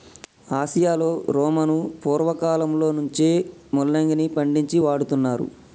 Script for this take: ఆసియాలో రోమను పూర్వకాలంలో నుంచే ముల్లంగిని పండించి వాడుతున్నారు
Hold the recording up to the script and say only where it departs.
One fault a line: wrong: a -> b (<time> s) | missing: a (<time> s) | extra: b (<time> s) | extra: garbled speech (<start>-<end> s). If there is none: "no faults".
no faults